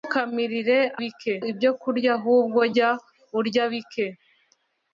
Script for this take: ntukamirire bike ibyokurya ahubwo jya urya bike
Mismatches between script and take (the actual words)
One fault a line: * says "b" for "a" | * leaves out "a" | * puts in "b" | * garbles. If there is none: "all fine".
all fine